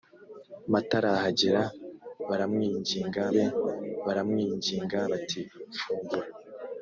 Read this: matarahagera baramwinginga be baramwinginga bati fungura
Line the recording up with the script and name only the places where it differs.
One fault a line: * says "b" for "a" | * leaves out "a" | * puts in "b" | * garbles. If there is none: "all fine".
all fine